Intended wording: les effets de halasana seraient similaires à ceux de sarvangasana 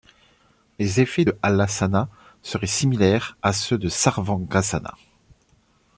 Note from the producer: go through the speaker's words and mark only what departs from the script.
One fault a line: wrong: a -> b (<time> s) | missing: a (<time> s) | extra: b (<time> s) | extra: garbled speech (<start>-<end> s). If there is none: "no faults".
no faults